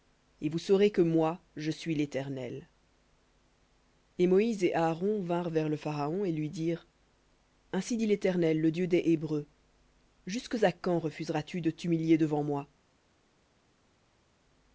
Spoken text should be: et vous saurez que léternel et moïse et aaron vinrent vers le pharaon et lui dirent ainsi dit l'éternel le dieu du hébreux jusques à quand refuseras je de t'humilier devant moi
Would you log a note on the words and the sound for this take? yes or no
yes